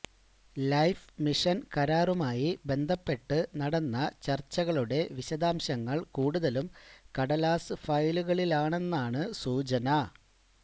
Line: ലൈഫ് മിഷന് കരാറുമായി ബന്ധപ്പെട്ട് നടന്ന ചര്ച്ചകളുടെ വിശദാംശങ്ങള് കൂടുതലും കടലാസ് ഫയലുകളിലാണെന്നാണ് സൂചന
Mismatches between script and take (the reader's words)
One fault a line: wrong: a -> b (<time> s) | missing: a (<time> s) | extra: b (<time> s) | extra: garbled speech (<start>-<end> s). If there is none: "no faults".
no faults